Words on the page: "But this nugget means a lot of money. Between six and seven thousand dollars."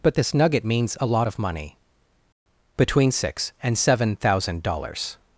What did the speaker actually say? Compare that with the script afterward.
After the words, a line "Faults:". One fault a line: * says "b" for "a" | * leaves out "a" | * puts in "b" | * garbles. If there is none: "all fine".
"But this nugget means a lot of money. Between six and seven thousand dollars."
Faults:
all fine